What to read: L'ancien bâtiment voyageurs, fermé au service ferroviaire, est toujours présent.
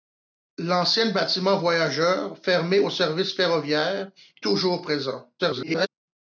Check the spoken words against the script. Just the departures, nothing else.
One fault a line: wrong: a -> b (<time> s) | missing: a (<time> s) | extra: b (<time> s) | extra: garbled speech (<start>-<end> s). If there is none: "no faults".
missing: est (4.1 s)
extra: garbled speech (5.4-5.9 s)